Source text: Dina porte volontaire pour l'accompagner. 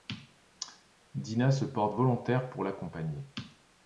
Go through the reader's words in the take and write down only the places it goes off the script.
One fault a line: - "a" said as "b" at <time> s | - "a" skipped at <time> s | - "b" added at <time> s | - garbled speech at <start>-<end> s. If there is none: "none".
- "se" added at 1.5 s